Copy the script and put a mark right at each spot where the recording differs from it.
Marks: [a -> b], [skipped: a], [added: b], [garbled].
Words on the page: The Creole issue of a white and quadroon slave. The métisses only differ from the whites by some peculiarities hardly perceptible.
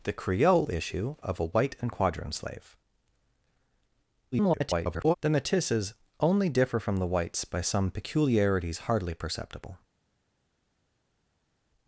The Creole issue of a white and quadroon slave. [garbled] The métisses only differ from the whites by some peculiarities hardly perceptible.